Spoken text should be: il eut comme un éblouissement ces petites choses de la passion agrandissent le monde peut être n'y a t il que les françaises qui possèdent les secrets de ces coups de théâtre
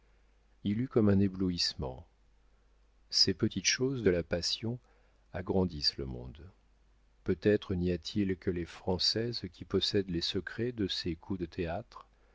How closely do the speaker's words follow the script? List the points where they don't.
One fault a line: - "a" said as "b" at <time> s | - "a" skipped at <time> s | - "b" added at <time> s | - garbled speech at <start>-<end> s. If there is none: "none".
none